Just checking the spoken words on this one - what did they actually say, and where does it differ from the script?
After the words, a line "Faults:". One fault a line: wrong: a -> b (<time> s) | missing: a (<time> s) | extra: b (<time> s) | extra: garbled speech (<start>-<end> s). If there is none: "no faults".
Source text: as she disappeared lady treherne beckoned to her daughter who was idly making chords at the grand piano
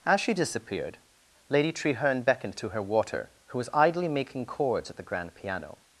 as she disappeared lady treherne beckoned to her water who was idly making chords at the grand piano
Faults:
wrong: daughter -> water (2.8 s)